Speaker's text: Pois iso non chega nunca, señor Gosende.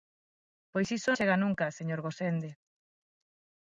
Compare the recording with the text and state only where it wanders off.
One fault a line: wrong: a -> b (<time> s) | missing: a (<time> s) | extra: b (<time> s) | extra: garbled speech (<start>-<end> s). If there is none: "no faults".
missing: non (1.1 s)